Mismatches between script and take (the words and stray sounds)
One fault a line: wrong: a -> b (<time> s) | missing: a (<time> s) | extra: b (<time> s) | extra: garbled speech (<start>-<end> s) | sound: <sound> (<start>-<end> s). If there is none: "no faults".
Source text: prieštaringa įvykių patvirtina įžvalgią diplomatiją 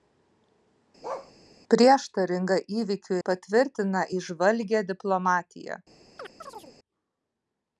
sound: bark (1.0-1.3 s)
sound: chirp (6.2-6.8 s)